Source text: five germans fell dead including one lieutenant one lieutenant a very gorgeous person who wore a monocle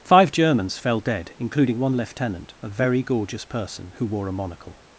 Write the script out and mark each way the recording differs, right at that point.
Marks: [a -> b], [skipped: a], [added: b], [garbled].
five germans fell dead including one lieutenant [skipped: one lieutenant] a very gorgeous person who wore a monocle